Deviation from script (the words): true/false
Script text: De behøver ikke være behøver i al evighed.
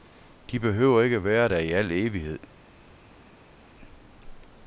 true